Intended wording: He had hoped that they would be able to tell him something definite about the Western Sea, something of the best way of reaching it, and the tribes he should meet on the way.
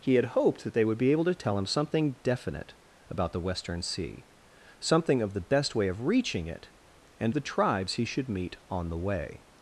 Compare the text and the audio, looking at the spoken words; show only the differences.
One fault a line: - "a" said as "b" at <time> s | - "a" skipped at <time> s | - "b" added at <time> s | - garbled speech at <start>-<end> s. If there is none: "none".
none